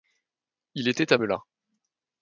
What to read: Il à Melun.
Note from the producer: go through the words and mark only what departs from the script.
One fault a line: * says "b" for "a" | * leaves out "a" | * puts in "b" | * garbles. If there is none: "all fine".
* puts in "était"